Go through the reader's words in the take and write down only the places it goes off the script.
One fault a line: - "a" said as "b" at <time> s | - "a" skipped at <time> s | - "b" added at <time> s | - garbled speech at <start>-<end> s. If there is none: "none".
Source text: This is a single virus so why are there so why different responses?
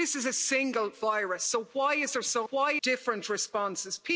none